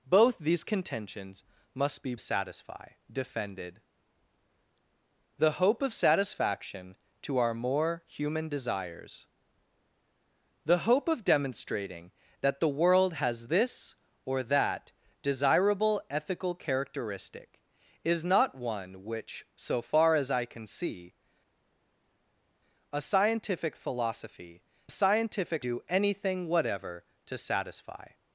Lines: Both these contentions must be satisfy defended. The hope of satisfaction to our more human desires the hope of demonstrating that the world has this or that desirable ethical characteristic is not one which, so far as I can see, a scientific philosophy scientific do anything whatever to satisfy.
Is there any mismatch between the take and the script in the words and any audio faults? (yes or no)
no